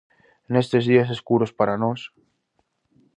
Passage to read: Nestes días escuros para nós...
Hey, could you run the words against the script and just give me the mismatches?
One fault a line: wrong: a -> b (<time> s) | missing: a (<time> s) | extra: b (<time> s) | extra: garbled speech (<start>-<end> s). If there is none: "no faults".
no faults